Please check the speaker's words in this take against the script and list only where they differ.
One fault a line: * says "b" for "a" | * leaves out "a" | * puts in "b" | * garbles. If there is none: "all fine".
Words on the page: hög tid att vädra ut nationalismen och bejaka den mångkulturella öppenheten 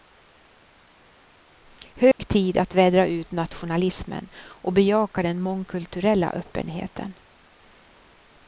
all fine